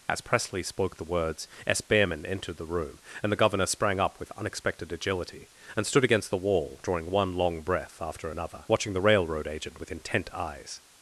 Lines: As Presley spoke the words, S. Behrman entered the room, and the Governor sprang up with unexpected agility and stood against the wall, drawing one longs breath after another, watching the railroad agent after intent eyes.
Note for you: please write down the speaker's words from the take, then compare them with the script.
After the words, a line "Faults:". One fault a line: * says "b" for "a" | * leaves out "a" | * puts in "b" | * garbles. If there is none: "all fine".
As Presley spoke the words, S. Behrman entered the room, and the Governor sprang up with unexpected agility and stood against the wall, drawing one long breath after another, watching the railroad agent with intent eyes.
Faults:
* says "long" for "longs"
* says "with" for "after"